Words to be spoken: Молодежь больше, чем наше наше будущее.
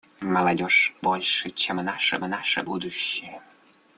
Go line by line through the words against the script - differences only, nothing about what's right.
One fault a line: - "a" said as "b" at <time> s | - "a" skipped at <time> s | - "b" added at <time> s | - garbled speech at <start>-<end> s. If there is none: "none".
none